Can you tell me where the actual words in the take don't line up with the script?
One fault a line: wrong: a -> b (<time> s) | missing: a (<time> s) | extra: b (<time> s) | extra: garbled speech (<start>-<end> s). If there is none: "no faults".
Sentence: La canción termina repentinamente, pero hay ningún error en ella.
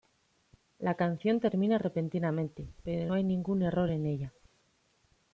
no faults